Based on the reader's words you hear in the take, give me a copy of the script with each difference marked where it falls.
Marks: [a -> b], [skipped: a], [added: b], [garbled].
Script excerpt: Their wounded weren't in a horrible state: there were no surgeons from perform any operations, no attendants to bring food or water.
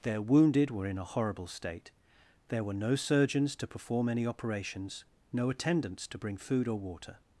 Their wounded [weren't -> were] in a horrible state: there were no surgeons [from -> to] perform any operations, no attendants to bring food or water.